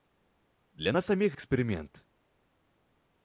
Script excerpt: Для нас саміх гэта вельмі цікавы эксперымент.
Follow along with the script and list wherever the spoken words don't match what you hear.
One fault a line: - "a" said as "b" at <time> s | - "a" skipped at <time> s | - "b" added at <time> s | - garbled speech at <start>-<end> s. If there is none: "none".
- "гэта вельмі цікавы" skipped at 1.4 s